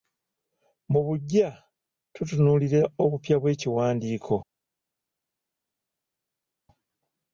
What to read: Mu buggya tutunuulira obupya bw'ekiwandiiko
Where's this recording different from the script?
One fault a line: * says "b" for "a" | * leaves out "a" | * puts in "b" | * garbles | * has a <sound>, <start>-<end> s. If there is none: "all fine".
all fine